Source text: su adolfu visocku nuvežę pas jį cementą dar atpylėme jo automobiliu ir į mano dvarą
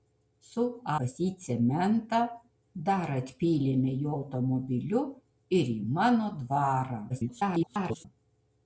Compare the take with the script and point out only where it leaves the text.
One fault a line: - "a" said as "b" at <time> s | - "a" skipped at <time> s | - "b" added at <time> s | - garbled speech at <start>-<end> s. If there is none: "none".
- "adolfu visocku nuvežę" skipped at 0.6 s
- garbled speech at 7.1-8.1 s